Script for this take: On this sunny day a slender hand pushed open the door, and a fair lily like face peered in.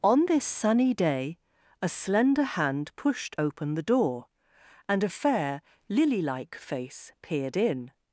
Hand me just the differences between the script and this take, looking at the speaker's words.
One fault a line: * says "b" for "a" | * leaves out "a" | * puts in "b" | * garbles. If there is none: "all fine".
all fine